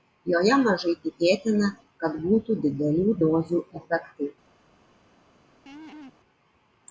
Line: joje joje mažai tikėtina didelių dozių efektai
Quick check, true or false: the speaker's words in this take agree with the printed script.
false